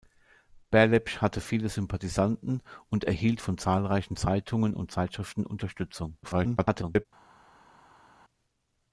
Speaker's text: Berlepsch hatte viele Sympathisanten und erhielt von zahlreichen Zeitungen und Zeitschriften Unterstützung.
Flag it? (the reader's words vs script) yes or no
yes